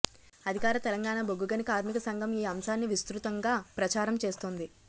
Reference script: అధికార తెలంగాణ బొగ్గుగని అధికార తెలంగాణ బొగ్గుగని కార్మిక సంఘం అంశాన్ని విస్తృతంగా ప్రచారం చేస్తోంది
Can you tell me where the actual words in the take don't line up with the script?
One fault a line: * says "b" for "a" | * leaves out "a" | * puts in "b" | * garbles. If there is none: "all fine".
* leaves out "అధికార తెలంగాణ బొగ్గుగని"
* puts in "ఈ"